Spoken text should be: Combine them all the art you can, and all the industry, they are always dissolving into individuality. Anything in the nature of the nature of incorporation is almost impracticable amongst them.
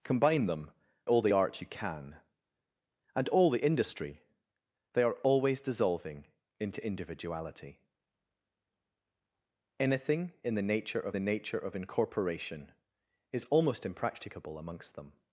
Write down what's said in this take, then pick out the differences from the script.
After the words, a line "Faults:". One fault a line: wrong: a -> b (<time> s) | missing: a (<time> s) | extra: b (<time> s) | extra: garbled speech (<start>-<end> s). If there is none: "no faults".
Combine them all the art you can, and all the industry, they are always dissolving into individuality. Anything in the nature of the nature of incorporation is almost impracticable amongst them.
Faults:
no faults